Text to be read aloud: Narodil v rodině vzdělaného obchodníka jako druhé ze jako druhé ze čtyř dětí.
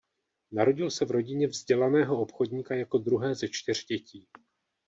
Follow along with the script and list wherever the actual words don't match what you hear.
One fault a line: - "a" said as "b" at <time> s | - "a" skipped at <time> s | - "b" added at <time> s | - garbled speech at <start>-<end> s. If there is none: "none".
- "se" added at 0.9 s
- "jako druhé ze" skipped at 3.5 s